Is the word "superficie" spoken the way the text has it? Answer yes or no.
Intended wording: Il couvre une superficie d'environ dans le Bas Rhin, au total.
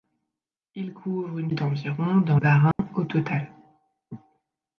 no